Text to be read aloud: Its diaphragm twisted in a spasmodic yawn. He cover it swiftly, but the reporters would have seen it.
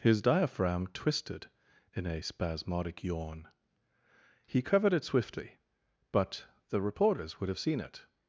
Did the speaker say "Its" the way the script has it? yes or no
no